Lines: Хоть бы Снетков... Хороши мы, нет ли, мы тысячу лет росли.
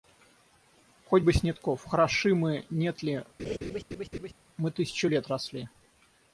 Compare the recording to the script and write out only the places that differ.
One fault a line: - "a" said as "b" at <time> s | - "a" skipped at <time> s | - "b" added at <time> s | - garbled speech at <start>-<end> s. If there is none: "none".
none